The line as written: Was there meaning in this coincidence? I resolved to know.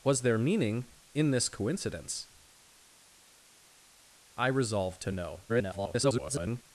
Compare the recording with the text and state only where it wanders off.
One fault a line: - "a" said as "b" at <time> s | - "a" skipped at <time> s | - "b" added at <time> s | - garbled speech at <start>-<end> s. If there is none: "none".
- garbled speech at 5.5-6.6 s